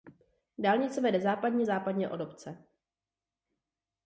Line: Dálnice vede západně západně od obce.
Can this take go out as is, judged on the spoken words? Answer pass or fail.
pass